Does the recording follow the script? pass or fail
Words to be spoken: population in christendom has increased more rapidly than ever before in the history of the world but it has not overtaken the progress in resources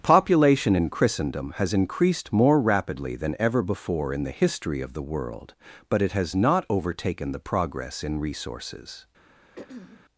pass